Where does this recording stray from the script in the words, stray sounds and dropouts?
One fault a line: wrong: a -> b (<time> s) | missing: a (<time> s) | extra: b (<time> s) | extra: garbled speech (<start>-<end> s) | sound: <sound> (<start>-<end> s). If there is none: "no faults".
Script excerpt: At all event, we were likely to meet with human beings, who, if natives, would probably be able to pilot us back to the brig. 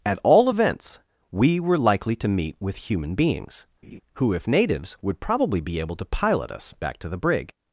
wrong: event -> events (0.5 s)
sound: laugh (3.8-4.0 s)